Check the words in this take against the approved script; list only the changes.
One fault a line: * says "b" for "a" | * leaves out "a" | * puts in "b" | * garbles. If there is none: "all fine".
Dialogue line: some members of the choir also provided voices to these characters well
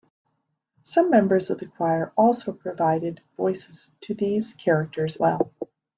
all fine